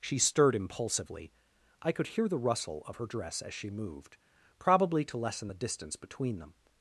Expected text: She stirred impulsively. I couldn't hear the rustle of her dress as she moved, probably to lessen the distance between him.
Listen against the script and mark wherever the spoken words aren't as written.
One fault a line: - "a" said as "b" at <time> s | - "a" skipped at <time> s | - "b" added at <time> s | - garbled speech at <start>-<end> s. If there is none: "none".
- "couldn't" said as "could" at 1.9 s
- "him" said as "them" at 6.4 s